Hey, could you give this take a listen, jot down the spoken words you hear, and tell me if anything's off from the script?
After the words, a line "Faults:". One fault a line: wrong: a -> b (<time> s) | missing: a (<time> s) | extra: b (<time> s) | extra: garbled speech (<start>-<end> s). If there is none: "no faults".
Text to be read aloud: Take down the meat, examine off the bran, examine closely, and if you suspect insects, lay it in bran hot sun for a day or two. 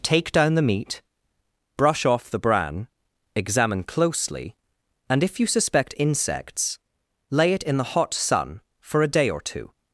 Take down the meat, brush off the bran, examine closely, and if you suspect insects, lay it in the hot sun for a day or two.
Faults:
wrong: examine -> brush (1.8 s)
wrong: bran -> the (7.8 s)